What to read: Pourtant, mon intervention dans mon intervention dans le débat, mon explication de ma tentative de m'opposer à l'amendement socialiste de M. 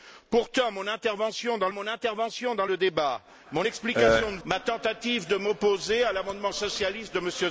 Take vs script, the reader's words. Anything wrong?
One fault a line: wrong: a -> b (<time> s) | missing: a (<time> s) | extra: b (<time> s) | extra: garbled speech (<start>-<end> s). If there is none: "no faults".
no faults